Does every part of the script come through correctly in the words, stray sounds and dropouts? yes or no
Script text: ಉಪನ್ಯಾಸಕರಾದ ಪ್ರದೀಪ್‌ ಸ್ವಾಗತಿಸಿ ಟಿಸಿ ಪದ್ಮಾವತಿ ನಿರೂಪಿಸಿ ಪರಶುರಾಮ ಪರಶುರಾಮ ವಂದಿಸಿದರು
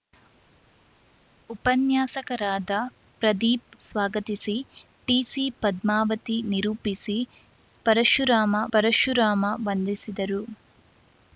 yes